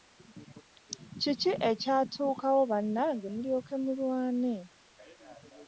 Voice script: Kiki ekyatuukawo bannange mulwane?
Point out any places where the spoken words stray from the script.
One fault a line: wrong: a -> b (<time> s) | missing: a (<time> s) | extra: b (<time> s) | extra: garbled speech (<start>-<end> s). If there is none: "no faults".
extra: mulyoke (3.3 s)